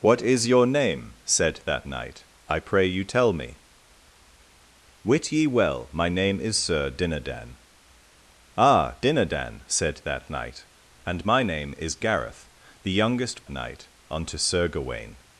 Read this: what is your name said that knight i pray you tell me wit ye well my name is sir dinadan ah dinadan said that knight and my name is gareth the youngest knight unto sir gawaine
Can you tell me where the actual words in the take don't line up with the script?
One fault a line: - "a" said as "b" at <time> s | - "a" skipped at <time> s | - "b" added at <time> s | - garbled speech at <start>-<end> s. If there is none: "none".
none